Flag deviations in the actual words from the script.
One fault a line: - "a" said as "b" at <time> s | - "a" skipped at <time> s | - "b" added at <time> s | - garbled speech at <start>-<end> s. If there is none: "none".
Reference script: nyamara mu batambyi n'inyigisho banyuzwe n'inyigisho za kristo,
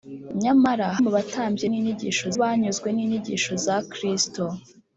none